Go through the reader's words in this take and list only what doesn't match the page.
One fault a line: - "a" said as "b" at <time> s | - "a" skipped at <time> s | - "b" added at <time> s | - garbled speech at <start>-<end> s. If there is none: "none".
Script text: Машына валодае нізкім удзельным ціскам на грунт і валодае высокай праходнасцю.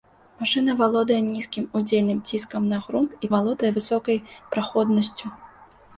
none